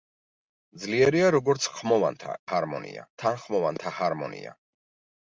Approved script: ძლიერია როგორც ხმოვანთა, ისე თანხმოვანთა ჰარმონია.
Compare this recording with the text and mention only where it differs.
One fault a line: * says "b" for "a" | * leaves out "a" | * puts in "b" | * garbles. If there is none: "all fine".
* says "ჰარმონია" for "ისე"